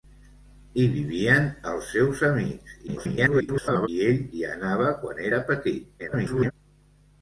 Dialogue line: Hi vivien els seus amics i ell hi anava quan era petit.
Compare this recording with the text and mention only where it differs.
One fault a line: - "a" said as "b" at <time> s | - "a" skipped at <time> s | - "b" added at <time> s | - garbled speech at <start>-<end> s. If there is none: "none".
- garbled speech at 2.9-3.9 s
- garbled speech at 6.0-6.5 s